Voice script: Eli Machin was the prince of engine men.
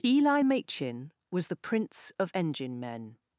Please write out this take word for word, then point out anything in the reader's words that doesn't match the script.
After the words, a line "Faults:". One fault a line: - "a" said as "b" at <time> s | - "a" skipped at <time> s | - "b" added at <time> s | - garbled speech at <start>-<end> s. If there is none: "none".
Eli Machin was the prince of engine men.
Faults:
none